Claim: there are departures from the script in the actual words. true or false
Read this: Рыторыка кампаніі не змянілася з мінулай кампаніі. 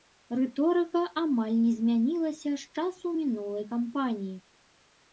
true